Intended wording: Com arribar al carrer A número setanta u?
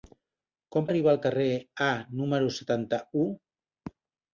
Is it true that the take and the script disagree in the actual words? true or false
false